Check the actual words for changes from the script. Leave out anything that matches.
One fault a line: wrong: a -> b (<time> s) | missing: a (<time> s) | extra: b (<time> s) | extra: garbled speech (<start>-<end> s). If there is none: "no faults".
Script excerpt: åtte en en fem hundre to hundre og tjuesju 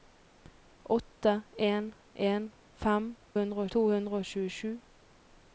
no faults